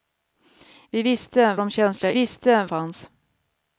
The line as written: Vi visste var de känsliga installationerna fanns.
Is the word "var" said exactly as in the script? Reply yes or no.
no